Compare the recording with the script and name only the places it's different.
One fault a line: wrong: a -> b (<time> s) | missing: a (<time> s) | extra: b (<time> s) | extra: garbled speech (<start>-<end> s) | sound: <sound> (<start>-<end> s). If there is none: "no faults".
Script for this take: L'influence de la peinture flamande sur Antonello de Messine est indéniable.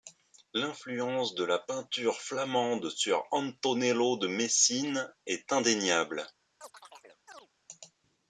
sound: chirp (6.6-7.5 s)